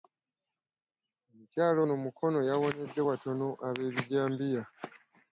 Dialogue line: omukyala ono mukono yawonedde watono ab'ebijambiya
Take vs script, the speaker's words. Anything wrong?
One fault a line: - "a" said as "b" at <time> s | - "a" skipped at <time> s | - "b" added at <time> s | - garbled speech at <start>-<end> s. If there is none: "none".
none